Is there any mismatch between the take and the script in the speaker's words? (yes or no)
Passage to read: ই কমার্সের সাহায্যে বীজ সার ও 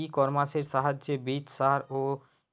no